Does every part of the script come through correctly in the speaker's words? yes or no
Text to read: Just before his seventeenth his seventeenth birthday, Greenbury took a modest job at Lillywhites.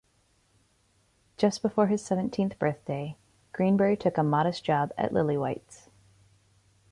no